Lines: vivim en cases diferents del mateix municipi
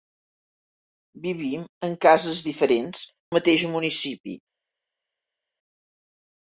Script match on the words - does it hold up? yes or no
no